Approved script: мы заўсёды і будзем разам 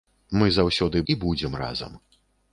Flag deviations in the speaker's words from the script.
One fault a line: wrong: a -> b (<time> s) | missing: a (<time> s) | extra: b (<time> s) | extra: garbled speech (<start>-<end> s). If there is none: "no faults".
no faults